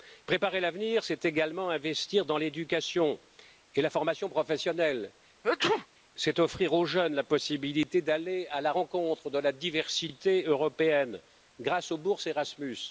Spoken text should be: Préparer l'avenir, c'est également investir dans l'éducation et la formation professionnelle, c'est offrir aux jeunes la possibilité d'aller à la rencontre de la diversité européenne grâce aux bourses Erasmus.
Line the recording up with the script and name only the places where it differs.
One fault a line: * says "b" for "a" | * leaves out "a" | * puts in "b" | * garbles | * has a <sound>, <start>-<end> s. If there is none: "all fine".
* has a sneeze, 5.4-5.9 s